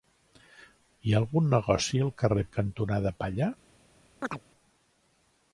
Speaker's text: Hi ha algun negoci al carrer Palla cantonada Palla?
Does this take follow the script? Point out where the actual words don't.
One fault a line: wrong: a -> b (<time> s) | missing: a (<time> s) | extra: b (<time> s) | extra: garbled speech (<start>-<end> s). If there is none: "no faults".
missing: Palla (2.5 s)